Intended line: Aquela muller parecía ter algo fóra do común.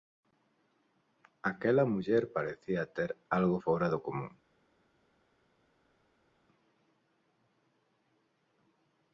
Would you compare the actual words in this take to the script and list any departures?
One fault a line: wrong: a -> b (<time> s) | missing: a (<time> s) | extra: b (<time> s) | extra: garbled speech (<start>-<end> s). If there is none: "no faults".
no faults